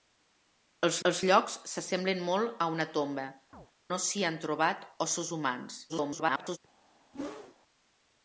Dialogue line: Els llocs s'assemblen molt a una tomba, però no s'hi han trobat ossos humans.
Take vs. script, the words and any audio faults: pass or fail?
fail